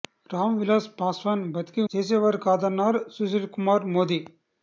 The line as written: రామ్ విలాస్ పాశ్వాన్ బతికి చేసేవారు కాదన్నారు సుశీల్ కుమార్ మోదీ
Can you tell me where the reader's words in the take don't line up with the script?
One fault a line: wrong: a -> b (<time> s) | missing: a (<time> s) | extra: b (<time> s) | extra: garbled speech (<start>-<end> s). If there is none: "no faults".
no faults